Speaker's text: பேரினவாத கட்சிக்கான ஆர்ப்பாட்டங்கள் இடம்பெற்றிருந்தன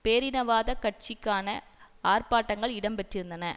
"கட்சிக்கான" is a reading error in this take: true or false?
false